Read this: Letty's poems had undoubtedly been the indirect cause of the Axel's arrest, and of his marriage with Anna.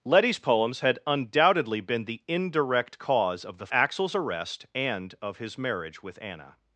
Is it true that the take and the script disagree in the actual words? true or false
false